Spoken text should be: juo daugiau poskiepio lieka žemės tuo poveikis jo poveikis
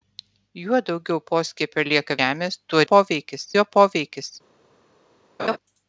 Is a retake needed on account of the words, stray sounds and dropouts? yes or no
yes